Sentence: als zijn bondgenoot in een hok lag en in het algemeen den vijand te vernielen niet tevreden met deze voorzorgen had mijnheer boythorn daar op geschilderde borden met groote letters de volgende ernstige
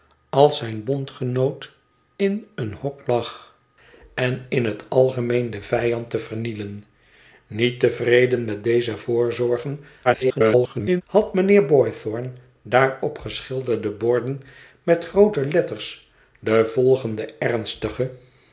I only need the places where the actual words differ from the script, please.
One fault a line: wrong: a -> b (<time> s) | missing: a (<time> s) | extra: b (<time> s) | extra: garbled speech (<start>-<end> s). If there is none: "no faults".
extra: garbled speech (10.0-11.0 s)